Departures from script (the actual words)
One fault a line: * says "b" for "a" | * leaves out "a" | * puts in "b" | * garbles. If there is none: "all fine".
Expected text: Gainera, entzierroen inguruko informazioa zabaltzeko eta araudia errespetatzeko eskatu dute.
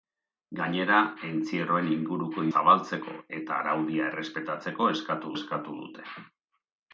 * leaves out "informazioa"
* puts in "eskatu"